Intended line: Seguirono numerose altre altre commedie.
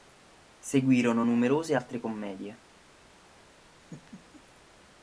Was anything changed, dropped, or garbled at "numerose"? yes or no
no